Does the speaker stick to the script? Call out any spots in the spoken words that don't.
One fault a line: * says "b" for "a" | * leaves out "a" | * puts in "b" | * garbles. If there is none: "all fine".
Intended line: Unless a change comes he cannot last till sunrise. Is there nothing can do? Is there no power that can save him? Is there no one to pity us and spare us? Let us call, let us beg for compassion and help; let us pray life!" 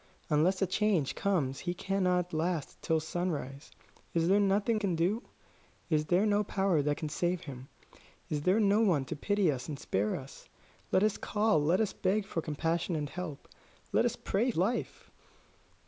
all fine